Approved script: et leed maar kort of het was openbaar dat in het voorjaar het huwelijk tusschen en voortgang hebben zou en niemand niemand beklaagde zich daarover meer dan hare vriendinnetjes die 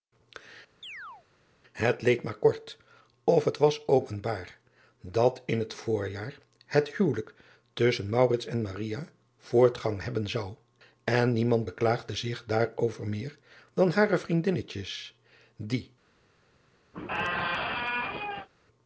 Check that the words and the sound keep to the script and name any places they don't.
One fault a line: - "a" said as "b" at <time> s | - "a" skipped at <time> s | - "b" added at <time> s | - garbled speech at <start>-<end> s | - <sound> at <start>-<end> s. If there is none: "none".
- chirp at 0.8-1.3 s
- "niemand" skipped at 11.7 s
- squeak at 16.9-18.5 s